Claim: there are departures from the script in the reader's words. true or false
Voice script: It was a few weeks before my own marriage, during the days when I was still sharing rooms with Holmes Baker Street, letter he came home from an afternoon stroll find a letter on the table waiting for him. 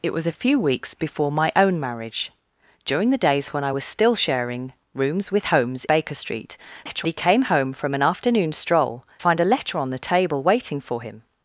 false